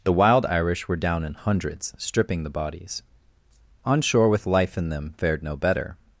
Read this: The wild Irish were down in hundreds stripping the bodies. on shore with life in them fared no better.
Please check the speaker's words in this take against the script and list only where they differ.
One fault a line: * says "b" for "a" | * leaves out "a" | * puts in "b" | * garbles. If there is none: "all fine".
all fine